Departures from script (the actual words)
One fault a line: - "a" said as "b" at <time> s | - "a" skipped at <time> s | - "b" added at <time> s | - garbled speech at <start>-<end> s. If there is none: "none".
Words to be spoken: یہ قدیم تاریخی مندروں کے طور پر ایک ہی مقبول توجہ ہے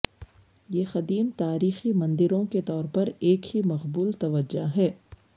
none